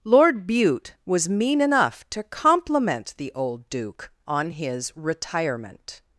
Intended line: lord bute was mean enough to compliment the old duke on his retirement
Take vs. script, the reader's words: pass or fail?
pass